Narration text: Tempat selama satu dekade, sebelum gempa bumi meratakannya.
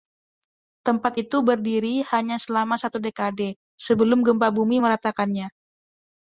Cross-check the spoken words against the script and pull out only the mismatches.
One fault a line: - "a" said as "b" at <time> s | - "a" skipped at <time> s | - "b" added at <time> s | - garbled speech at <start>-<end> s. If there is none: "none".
- "itu berdiri hanya" added at 1.2 s